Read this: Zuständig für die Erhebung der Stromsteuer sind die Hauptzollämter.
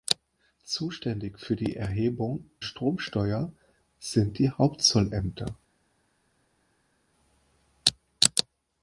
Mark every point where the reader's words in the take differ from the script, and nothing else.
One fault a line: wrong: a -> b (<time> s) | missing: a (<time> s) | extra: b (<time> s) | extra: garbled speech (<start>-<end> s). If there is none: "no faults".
missing: der (2.5 s)